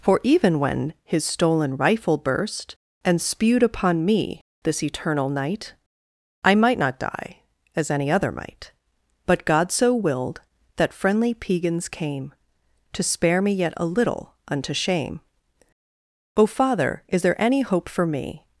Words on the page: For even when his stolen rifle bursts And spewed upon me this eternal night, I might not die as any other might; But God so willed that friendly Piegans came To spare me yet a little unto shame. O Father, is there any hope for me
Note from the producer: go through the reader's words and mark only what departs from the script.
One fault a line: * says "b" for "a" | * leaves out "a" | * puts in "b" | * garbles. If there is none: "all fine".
* says "burst" for "bursts"